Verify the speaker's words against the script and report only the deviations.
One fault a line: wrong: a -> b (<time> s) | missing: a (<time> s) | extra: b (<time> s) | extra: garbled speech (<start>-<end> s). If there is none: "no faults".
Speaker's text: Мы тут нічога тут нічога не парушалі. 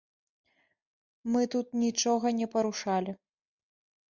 missing: тут нічога (2.3 s)